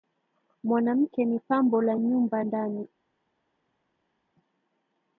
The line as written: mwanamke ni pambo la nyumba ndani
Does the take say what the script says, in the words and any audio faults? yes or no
yes